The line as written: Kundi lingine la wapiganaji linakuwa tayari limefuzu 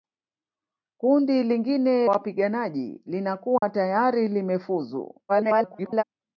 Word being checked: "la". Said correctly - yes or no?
no